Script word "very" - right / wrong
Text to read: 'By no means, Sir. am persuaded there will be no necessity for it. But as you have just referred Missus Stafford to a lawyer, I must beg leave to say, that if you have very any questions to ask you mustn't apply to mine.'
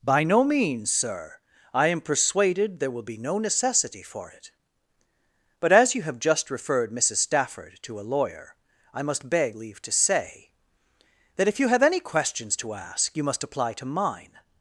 wrong